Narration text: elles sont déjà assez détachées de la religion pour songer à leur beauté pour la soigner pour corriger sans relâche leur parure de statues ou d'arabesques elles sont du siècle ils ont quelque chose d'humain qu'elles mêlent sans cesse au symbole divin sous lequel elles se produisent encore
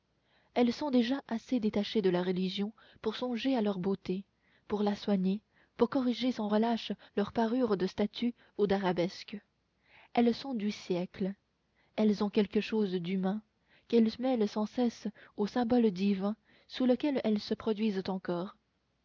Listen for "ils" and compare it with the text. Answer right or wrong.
wrong